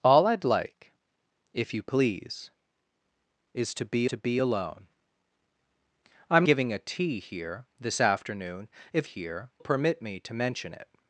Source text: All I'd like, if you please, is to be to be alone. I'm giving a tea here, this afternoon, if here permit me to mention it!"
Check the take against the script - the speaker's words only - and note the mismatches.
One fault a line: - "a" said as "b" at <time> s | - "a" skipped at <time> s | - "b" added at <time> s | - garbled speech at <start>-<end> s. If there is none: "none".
none